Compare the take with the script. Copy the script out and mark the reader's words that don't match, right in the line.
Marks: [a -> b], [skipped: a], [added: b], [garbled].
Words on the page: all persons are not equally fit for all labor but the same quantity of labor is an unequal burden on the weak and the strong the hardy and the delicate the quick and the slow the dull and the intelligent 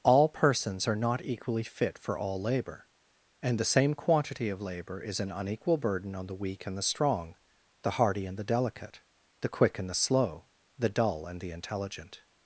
all persons are not equally fit for all labor [but -> and] the same quantity of labor is an unequal burden on the weak and the strong the hardy and the delicate the quick and the slow the dull and the intelligent